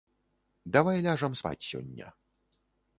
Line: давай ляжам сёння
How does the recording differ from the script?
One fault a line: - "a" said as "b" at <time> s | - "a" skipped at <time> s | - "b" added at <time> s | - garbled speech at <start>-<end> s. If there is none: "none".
- "спаць" added at 1.4 s